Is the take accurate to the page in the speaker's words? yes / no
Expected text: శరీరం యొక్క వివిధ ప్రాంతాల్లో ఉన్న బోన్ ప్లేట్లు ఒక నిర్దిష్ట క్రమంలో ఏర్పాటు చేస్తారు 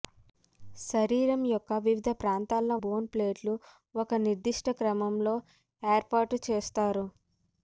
no